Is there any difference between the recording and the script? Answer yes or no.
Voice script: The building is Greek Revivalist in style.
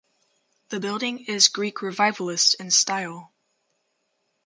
no